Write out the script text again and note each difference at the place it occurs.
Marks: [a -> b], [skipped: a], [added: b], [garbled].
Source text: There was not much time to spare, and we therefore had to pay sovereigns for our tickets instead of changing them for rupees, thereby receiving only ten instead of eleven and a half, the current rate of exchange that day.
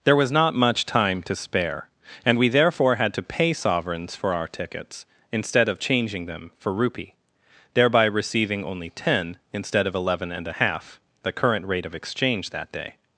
There was not much time to spare, and we therefore had to pay sovereigns for our tickets instead of changing them for [rupees, -> rupee] thereby receiving only ten instead of eleven and a half, the current rate of exchange that day.